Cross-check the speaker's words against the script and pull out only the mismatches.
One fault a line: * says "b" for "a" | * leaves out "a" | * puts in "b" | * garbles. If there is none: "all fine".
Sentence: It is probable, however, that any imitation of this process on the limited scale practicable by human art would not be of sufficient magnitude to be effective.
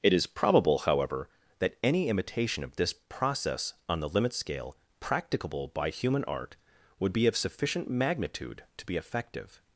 * says "limit" for "limited"
* leaves out "not"